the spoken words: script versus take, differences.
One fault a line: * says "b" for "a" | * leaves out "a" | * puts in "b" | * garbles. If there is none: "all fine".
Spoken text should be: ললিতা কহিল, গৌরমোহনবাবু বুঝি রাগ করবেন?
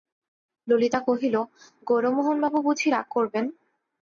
all fine